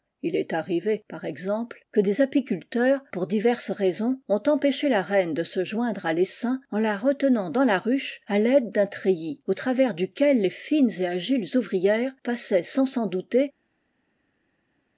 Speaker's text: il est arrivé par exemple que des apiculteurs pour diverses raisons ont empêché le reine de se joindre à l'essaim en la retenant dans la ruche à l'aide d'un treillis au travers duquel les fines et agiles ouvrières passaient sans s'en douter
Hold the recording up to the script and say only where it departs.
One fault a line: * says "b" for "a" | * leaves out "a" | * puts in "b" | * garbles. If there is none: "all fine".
* says "la" for "le"